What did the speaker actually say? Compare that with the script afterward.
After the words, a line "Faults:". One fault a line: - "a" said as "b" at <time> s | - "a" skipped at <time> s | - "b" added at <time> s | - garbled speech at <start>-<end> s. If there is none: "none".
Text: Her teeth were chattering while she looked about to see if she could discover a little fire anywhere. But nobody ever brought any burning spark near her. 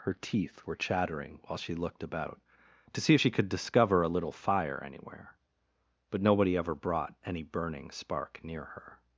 Her teeth were chattering while she looked about to see if she could discover a little fire anywhere. But nobody ever brought any burning spark near her.
Faults:
none